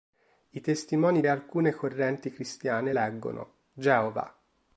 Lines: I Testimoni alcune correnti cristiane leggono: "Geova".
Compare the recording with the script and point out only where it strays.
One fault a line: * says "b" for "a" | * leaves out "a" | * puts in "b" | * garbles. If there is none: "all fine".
all fine